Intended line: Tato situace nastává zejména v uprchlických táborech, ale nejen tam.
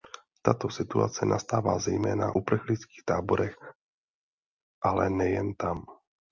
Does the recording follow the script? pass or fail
fail